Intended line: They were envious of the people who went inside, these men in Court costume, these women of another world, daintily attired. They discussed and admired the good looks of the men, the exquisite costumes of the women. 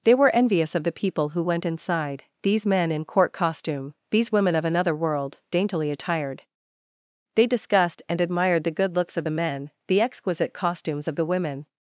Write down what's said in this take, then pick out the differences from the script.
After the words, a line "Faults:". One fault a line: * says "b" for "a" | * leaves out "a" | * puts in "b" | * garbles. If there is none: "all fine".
They were envious of the people who went inside, these men in Court costume, these women of another world, daintily attired. They discussed and admired the good looks of the men, the exquisite costumes of the women.
Faults:
all fine